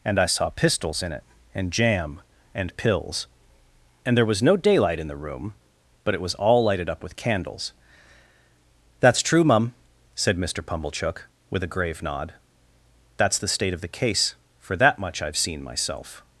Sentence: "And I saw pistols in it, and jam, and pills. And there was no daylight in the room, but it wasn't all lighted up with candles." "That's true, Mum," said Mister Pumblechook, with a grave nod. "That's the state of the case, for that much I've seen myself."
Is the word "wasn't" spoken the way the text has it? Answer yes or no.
no